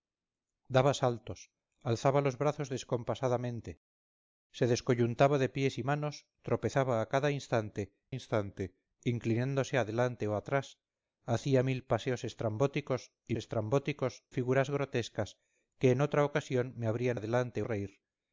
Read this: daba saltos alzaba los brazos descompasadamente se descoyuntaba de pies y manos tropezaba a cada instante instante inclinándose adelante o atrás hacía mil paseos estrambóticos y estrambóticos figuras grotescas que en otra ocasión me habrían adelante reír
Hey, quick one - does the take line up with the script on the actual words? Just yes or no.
yes